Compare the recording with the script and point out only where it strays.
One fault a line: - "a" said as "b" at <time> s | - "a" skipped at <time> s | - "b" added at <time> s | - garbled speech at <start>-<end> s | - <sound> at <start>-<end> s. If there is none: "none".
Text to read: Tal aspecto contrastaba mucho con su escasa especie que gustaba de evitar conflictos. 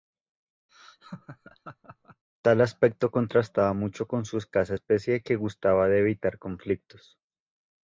- laugh at 0.7-2.2 s